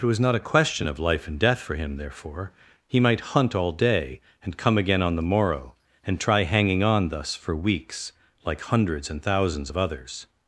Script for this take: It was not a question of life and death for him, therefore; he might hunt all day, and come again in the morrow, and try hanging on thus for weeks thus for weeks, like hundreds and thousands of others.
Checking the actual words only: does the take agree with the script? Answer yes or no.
no